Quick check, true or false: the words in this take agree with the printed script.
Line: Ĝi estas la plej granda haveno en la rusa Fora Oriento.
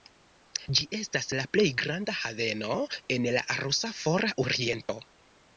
true